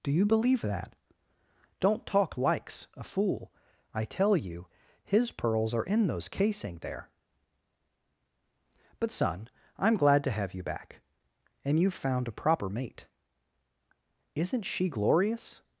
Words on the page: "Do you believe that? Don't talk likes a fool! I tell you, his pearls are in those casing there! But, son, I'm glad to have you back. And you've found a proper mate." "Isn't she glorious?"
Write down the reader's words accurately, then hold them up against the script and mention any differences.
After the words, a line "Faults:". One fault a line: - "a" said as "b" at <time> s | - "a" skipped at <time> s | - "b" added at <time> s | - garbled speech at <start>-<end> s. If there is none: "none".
"Do you believe that? Don't talk likes a fool! I tell you, his pearls are in those casing there! But, son, I'm glad to have you back. And you've found a proper mate." "Isn't she glorious?"
Faults:
none